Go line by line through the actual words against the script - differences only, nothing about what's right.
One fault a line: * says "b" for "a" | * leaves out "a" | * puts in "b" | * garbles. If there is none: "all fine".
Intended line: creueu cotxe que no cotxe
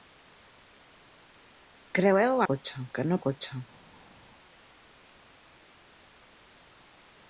all fine